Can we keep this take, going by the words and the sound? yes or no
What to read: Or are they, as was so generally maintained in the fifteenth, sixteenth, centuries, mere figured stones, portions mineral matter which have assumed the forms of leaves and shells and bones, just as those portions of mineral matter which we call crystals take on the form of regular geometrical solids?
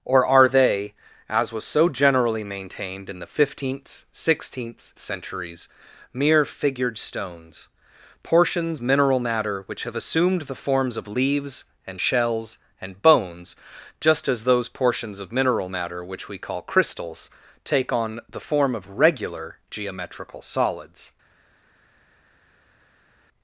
yes